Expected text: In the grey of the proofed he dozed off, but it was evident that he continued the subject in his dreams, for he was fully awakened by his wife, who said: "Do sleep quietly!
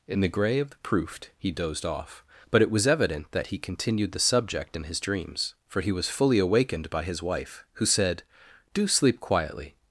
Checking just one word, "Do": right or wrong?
right